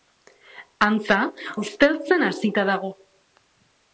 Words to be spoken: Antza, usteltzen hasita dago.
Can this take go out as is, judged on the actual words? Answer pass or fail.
pass